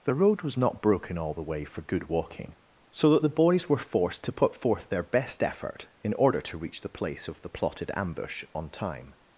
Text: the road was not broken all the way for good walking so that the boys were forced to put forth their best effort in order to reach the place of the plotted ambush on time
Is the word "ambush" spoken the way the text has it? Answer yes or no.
yes